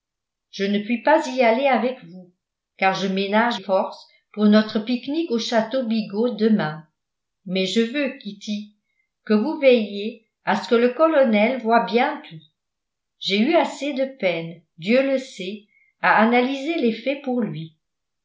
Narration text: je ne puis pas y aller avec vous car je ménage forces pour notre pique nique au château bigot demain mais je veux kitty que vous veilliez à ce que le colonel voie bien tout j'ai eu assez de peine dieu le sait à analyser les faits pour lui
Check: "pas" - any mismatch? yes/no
no